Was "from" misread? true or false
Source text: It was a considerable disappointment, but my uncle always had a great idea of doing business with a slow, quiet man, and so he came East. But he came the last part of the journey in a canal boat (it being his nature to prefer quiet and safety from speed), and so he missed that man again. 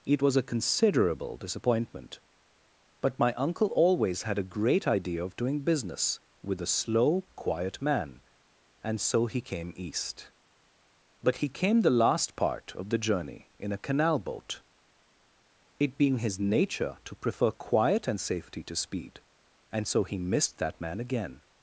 true